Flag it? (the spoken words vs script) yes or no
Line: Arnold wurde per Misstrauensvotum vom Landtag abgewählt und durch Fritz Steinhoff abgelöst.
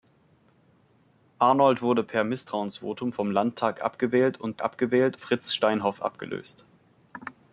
yes